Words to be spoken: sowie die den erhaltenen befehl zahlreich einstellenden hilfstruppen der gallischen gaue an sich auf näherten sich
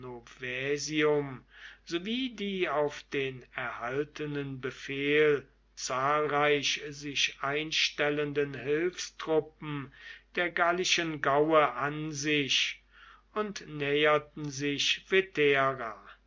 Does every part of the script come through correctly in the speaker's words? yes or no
no